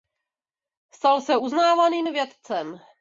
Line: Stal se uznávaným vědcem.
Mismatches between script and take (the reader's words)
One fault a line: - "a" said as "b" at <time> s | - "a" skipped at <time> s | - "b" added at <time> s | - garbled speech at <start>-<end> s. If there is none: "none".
none